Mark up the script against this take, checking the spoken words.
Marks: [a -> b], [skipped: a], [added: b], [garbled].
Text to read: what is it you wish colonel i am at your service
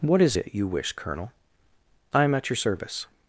what is it you wish colonel i am at your service